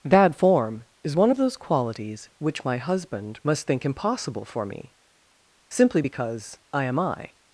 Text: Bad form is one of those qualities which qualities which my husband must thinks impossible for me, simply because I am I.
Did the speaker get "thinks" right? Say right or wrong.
wrong